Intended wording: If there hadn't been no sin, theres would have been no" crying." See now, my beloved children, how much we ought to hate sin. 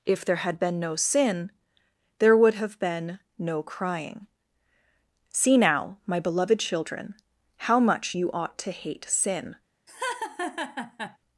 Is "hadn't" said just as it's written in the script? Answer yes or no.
no